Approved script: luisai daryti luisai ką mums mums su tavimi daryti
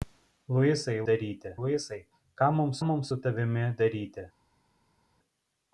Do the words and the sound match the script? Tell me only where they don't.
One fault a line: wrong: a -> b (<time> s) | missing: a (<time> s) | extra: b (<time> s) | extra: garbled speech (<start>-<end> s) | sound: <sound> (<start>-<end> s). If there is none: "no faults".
no faults